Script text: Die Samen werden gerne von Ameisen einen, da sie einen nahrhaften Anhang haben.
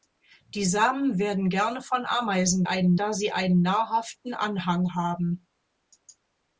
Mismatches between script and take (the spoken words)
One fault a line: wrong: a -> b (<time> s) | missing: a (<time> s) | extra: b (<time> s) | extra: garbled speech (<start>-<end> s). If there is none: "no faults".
no faults